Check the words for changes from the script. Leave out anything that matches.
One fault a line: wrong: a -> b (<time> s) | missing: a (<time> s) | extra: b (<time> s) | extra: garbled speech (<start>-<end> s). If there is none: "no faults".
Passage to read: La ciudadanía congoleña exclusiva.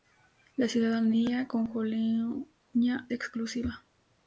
no faults